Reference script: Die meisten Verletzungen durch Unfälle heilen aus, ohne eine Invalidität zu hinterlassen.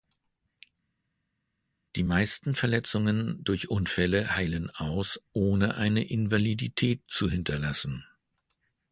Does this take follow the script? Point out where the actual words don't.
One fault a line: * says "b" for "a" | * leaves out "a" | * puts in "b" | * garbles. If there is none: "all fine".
all fine